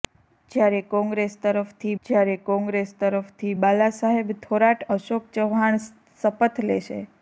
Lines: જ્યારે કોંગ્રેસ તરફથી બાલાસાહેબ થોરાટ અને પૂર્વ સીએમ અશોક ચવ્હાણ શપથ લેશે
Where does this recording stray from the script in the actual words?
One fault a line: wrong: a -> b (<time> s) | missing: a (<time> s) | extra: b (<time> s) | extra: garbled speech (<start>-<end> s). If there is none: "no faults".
wrong: બાલાસાહેબ થોરાટ અને પૂર્વ સીએમ -> જ્યારે કોંગ્રેસ તરફથી બાલાસાહેબ થોરાટ (2.1 s)